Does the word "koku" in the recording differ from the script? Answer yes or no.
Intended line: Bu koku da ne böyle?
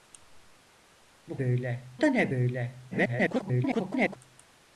yes